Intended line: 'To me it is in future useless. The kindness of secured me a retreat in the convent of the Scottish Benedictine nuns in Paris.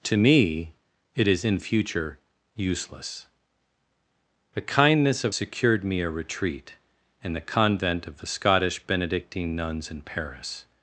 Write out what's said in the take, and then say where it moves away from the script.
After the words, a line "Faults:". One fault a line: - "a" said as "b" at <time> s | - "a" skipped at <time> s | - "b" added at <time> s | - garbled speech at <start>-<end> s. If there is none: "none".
'To me it is in future useless. The kindness of secured me a retreat in the convent of the Scottish Benedictine nuns in Paris.
Faults:
none